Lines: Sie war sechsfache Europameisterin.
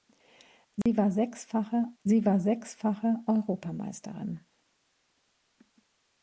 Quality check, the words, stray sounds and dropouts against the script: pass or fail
fail